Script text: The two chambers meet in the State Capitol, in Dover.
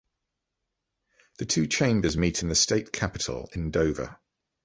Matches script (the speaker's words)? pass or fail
pass